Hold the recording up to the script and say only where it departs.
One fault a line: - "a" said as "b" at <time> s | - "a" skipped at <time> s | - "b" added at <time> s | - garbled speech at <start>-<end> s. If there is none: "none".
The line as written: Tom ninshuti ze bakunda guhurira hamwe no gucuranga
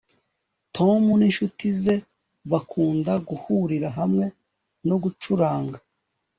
none